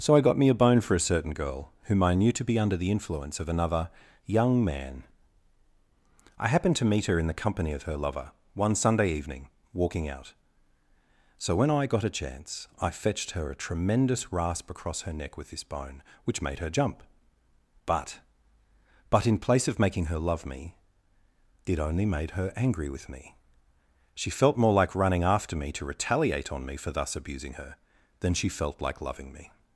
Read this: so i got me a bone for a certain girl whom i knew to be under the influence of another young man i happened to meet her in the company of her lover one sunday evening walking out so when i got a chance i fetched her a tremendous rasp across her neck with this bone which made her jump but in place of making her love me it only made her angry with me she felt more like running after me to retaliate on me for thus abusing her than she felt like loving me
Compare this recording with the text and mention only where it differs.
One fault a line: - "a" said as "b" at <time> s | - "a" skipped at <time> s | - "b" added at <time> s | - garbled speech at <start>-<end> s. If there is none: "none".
- "but" added at 19.1 s